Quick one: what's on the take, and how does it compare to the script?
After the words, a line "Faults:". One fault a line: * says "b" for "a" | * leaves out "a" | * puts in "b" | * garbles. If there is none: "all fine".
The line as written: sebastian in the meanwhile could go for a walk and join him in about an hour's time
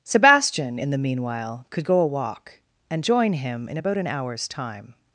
sebastian in the meanwhile could go a walk and join him in about an hour's time
Faults:
* leaves out "for"